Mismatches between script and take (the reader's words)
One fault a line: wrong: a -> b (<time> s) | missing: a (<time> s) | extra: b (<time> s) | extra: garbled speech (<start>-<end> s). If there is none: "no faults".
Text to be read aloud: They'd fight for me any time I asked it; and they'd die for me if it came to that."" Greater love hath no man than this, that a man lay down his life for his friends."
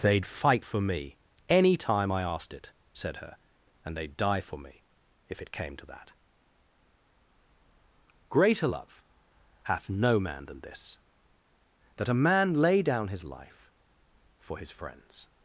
extra: said her (2.9 s)